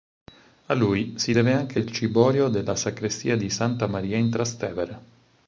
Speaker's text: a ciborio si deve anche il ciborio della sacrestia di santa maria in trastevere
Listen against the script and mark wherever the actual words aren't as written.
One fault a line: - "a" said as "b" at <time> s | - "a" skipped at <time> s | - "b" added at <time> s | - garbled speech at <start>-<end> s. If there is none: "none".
- "ciborio" said as "lui" at 0.7 s